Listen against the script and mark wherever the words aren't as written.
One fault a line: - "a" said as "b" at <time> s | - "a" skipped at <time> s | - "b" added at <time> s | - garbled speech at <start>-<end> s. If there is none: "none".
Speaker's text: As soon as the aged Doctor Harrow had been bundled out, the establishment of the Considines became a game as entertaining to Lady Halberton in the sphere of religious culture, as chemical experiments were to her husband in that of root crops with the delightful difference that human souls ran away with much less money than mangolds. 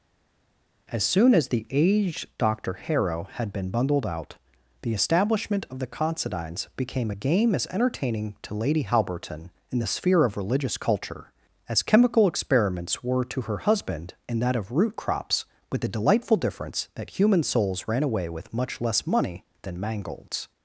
none